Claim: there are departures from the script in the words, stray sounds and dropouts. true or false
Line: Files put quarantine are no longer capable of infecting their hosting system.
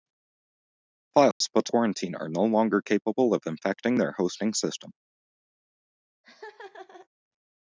true